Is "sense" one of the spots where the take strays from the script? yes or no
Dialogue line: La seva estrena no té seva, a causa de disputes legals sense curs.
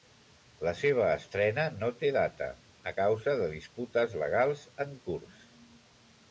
yes